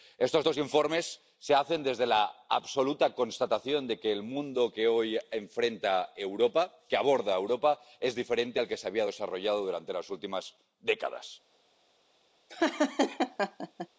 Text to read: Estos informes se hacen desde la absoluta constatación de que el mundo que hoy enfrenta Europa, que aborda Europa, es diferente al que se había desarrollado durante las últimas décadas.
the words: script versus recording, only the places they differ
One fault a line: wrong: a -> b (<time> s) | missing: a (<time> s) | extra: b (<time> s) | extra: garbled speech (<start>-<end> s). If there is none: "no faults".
extra: dos (0.4 s)